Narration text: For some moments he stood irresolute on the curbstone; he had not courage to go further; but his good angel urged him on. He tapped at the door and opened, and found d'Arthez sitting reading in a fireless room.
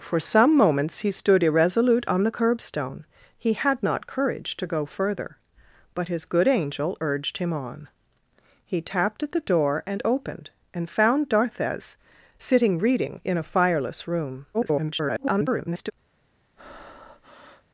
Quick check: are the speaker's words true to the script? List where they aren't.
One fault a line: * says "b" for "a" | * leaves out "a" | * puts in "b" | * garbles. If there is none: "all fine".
* garbles